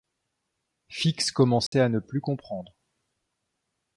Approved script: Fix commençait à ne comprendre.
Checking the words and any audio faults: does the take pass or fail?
fail